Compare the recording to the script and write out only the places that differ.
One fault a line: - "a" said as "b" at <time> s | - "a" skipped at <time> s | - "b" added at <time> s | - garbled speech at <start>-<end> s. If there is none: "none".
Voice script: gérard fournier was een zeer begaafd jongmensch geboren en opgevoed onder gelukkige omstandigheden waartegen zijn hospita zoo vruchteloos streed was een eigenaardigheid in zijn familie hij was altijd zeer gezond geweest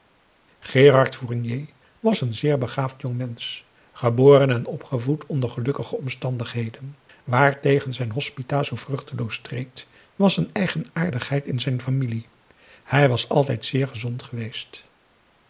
none